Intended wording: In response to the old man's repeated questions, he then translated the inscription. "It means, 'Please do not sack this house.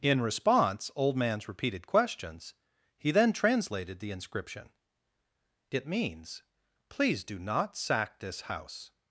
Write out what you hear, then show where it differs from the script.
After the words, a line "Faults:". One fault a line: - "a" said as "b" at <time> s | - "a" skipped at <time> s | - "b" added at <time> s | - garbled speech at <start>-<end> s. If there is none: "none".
In response old man's repeated questions, he then translated the inscription. "It means, 'Please do not sack this house.
Faults:
- "to the" skipped at 0.9 s